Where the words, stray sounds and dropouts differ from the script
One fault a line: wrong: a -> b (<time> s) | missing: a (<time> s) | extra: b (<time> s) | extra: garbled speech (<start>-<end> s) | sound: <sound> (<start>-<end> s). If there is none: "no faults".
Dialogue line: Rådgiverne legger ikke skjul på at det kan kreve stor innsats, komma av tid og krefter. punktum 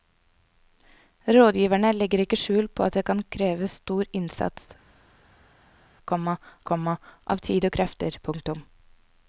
extra: komma (6.7 s)